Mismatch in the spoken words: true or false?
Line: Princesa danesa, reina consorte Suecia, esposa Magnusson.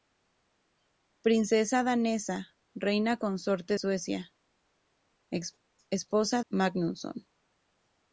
false